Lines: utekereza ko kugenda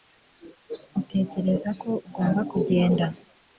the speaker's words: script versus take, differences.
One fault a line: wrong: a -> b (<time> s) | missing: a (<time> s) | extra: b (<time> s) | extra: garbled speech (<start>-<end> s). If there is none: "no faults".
extra: ugomba (2.1 s)